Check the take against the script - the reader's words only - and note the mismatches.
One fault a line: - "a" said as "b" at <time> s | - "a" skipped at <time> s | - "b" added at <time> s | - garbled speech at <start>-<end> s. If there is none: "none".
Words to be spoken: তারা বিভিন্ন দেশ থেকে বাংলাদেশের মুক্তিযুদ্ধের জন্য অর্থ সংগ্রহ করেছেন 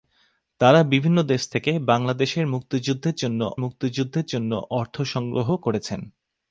- "মুক্তিযুদ্ধের জন্য" added at 3.6 s